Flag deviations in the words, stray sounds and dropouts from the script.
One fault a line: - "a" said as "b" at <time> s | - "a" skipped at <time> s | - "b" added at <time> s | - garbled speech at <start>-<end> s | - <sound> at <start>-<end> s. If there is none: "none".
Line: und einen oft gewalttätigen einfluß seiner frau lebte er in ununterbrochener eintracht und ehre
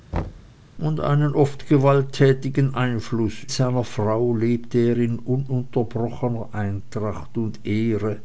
- thud at 0.1-0.5 s